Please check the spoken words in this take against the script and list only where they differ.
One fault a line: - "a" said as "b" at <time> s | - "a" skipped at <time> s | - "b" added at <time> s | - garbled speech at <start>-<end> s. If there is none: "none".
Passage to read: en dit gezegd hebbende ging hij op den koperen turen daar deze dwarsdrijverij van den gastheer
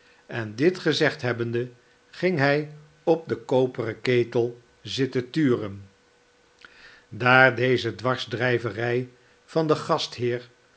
- "ketel zitten" added at 4.0 s